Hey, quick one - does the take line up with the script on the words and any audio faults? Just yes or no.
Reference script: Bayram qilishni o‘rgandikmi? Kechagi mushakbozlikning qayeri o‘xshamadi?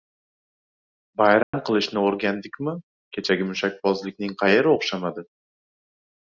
no